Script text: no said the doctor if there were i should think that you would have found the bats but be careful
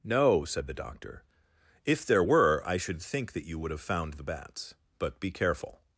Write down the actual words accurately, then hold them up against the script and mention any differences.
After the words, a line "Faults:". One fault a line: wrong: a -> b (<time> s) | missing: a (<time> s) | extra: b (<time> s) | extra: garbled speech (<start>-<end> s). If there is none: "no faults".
no said the doctor if there were i should think that you would have found the bats but be careful
Faults:
no faults